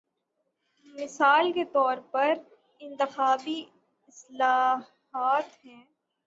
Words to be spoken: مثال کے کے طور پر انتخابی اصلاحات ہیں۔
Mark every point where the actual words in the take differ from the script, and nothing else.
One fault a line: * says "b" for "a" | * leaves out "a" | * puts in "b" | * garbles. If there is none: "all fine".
* leaves out "کے"